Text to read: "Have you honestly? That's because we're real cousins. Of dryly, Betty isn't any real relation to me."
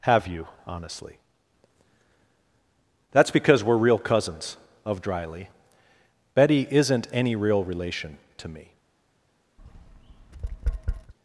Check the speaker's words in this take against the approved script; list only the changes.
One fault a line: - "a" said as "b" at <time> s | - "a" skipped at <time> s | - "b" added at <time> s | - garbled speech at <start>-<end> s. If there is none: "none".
none